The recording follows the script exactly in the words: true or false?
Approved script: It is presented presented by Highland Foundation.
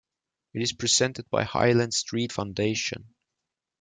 false